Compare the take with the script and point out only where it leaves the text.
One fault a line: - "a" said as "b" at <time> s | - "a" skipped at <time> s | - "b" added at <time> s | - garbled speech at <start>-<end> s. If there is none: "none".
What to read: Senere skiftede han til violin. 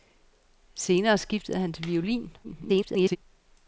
- garbled speech at 2.4-3.2 s